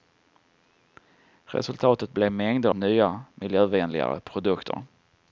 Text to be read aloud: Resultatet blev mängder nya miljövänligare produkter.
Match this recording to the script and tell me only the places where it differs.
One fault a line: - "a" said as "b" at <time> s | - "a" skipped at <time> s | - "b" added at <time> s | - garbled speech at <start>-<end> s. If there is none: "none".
none